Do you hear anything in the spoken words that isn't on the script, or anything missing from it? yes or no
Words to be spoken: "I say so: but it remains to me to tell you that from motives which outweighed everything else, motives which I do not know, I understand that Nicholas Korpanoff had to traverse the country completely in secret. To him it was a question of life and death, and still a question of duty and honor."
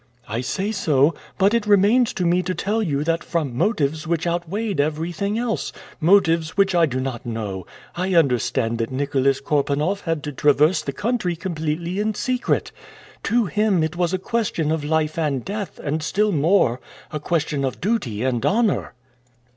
yes